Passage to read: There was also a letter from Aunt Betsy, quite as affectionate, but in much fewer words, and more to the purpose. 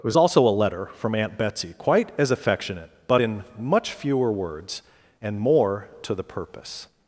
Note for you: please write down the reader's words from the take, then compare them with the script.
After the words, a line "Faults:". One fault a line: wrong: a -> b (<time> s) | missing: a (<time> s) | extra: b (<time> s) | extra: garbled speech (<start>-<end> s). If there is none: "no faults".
It was also a letter from Aunt Betsy, quite as affectionate, but in much fewer words, and more to the purpose.
Faults:
wrong: There -> It (0.0 s)